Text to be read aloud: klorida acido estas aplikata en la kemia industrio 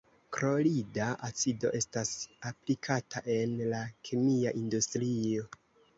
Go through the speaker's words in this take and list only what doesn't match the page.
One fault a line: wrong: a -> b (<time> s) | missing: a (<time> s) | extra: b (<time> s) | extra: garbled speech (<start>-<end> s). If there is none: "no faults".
no faults